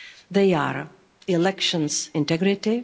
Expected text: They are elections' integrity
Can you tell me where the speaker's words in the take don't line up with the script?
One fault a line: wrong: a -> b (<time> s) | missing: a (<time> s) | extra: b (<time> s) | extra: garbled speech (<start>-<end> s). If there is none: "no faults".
no faults